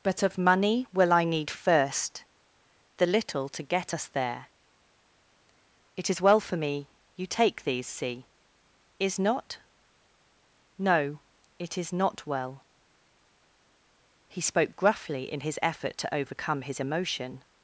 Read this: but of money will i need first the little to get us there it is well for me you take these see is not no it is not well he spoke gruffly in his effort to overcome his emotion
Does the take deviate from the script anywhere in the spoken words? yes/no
no